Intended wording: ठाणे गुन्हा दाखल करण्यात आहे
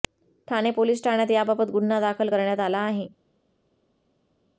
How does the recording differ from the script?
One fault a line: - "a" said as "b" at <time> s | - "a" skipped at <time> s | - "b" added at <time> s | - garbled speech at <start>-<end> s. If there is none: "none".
- "पोलीस ठाण्यात याबाबत" added at 0.7 s
- "आला" added at 2.6 s